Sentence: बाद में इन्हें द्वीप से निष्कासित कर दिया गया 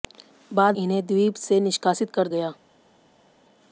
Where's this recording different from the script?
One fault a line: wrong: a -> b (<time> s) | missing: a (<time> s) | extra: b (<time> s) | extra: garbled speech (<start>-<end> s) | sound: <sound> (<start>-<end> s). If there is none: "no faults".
missing: में (0.8 s)
missing: दिया (2.3 s)